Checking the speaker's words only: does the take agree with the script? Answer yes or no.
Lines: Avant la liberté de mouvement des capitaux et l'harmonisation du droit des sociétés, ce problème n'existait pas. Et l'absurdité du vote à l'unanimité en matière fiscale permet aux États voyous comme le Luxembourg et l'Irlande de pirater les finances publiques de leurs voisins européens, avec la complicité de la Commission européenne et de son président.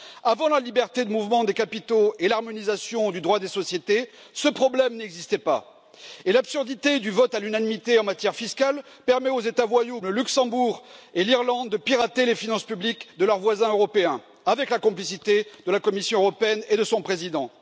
no